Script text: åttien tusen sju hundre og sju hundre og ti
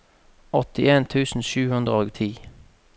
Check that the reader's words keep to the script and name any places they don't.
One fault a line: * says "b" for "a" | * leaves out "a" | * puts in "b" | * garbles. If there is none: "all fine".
* leaves out "sju hundre og"